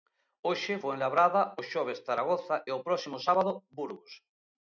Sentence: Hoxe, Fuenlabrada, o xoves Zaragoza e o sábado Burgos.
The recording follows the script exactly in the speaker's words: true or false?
false